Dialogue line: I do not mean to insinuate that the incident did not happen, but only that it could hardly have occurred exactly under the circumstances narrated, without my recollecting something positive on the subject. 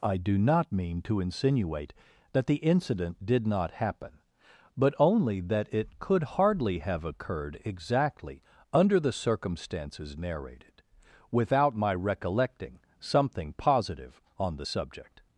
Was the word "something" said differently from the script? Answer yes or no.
no